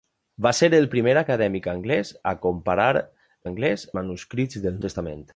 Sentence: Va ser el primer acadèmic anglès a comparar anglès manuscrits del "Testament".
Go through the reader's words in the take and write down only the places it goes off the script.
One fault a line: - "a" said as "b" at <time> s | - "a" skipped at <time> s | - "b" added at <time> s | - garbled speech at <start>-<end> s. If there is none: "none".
none